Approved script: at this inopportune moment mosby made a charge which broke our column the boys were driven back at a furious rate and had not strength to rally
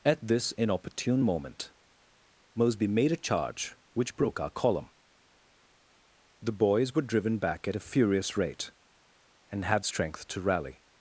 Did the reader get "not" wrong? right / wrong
wrong